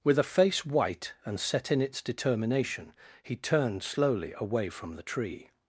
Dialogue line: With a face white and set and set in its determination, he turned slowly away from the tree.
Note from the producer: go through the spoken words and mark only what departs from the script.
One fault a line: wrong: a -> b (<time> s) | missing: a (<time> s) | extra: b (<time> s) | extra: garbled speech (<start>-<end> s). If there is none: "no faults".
missing: and set (1.7 s)